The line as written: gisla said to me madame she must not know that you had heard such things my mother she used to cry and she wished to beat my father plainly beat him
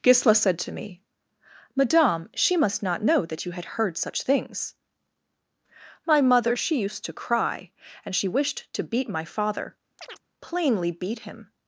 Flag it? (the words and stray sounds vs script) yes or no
yes